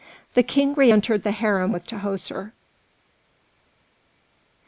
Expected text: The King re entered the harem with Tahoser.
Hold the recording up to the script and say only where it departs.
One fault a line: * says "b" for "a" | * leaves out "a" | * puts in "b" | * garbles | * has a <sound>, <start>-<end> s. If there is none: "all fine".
all fine